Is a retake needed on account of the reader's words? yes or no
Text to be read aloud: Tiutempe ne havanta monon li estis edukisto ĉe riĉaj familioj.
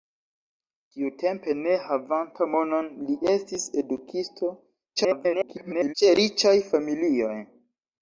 yes